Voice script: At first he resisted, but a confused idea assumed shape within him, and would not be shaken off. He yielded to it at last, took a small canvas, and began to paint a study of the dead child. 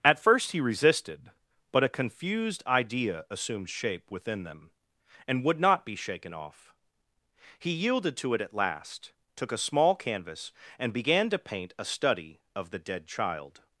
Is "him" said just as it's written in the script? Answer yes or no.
no